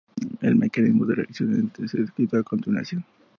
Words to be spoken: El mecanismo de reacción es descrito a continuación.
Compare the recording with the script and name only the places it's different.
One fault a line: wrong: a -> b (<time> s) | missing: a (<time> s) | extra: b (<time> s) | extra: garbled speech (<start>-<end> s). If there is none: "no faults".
no faults